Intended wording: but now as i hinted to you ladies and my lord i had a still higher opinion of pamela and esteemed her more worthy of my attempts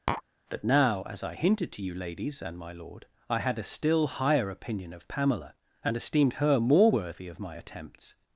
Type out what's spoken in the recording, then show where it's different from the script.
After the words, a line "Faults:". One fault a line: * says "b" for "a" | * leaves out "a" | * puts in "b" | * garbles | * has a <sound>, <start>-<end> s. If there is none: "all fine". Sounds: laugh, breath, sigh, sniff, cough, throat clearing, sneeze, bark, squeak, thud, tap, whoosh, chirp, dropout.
but now as i hinted to you ladies and my lord i had a still higher opinion of pamela and esteemed her more worthy of my attempts
Faults:
* has a tap, 0.1-0.2 s